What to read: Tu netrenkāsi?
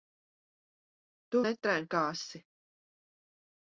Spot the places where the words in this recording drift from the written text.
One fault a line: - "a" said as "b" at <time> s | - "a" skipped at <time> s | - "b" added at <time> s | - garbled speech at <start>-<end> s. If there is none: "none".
none